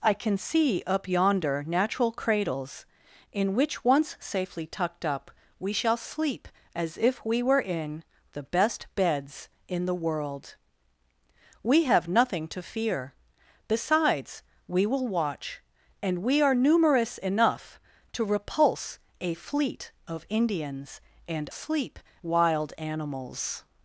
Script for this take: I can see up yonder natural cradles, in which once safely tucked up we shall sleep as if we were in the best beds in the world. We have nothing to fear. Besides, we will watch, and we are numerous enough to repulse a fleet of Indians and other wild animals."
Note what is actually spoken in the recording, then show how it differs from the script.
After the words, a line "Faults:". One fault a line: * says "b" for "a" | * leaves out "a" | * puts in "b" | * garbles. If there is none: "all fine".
I can see up yonder natural cradles, in which once safely tucked up we shall sleep as if we were in the best beds in the world. We have nothing to fear. Besides, we will watch, and we are numerous enough to repulse a fleet of Indians and sleep wild animals."
Faults:
* says "sleep" for "other"